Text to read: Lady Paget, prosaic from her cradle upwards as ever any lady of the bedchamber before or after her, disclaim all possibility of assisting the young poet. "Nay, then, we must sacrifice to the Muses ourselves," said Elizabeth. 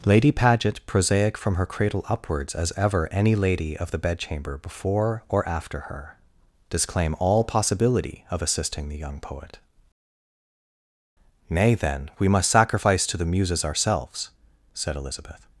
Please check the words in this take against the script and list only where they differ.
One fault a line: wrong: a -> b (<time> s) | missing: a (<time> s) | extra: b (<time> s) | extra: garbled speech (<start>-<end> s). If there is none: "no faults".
no faults